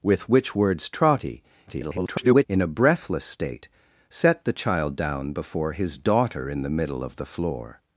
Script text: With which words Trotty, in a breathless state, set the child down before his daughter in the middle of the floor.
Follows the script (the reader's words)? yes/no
no